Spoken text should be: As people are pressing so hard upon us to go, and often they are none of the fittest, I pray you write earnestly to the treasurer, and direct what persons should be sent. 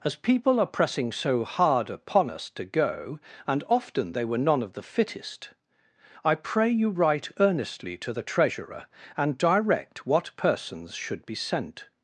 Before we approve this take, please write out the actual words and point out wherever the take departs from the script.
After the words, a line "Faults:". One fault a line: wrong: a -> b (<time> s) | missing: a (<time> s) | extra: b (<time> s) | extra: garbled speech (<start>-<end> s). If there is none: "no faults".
As people are pressing so hard upon us to go, and often they were none of the fittest, I pray you write earnestly to the treasurer, and direct what persons should be sent.
Faults:
wrong: are -> were (4.2 s)